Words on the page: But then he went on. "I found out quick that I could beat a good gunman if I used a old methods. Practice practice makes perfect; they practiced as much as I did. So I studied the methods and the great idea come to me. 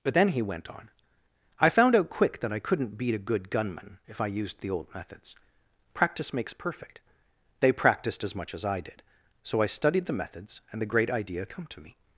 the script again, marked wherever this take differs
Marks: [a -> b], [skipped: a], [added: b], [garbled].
But then he went on. "I found out quick that I [could -> couldn't] beat a good gunman if I used [a -> the] old methods. Practice [skipped: practice] makes perfect; they practiced as much as I did. So I studied the methods and the great idea come to me.